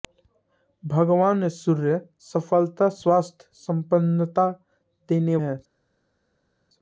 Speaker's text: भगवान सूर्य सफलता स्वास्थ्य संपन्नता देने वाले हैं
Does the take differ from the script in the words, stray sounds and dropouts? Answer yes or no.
yes